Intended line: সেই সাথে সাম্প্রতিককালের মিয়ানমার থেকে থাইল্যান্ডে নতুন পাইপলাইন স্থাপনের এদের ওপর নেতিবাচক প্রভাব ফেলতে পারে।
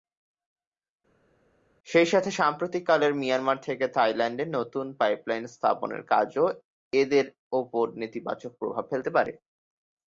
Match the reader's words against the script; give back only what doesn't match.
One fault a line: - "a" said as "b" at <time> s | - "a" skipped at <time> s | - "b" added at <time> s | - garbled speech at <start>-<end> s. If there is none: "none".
- "কাজও" added at 6.1 s